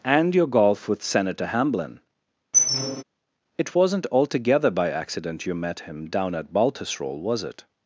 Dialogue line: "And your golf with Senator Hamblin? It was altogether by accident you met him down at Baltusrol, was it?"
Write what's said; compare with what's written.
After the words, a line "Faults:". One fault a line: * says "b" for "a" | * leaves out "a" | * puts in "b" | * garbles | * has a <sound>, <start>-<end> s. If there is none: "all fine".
"And your golf with Senator Hamblin? It wasn't altogether by accident you met him down at Baltusrol, was it?"
Faults:
* has a squeak, 2.5-3.0 s
* says "wasn't" for "was"